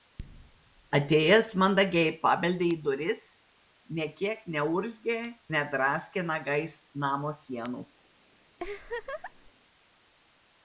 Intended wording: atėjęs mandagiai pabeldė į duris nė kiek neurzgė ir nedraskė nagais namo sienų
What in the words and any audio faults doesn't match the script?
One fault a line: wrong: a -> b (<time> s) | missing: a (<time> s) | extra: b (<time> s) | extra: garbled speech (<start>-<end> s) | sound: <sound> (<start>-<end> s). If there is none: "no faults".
missing: ir (5.2 s)
sound: laugh (8.6-9.5 s)